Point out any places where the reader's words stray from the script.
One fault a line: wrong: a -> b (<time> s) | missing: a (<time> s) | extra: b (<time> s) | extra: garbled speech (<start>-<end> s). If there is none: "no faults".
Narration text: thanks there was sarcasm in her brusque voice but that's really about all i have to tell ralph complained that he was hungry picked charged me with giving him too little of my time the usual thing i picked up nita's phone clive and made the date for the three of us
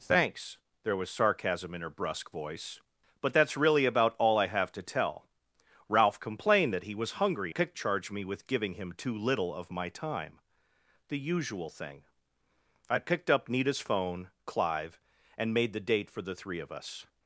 no faults